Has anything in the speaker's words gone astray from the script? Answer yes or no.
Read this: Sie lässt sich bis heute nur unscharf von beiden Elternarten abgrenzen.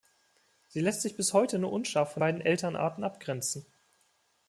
no